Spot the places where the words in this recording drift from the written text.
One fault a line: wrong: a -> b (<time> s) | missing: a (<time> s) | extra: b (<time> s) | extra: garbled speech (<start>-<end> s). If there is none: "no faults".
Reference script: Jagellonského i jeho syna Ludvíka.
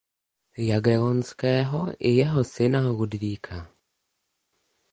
no faults